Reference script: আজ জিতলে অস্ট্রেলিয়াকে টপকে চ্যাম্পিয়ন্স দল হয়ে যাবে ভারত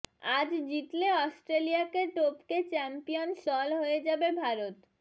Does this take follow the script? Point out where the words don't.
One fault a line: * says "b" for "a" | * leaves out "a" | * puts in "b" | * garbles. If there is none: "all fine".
all fine